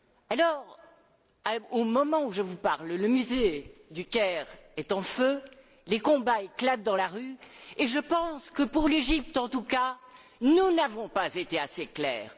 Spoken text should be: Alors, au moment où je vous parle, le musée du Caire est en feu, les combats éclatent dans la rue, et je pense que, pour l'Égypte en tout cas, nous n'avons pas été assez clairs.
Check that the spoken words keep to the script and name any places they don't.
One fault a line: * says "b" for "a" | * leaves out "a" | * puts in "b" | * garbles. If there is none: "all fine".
all fine